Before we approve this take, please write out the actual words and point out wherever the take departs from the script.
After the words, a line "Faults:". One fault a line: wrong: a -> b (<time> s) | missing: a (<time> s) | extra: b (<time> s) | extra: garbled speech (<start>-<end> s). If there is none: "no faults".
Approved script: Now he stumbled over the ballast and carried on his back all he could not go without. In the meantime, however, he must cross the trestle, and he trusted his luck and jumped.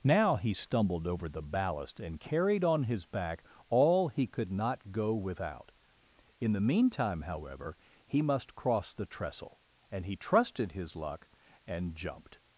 Now he stumbled over the ballast and carried on his back all he could not go without. In the meantime, however, he must cross the trestle, and he trusted his luck and jumped.
Faults:
no faults